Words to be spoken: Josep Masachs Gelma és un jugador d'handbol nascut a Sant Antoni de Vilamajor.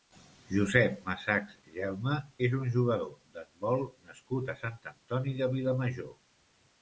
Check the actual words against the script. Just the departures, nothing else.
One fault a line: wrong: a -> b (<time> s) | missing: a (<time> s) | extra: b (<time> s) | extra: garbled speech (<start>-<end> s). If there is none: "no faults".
no faults